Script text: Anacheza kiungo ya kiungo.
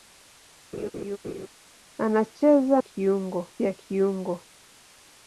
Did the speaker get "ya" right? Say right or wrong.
right